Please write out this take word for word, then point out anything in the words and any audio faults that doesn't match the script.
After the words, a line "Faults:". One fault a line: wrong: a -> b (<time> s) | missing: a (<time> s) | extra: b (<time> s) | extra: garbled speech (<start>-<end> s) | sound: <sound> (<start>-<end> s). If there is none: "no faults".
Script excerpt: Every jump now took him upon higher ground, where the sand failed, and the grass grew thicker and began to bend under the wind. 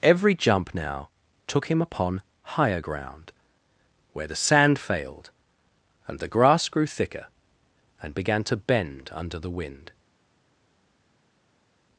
Every jump now took him upon higher ground, where the sand failed, and the grass grew thicker and began to bend under the wind.
Faults:
no faults